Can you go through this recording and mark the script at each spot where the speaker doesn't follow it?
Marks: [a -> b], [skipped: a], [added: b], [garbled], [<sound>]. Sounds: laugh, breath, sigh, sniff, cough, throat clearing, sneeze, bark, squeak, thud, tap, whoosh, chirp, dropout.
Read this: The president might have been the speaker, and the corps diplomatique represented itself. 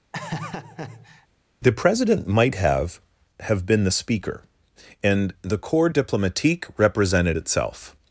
[laugh] The president might have [added: have] been the speaker, and the corps diplomatique represented itself.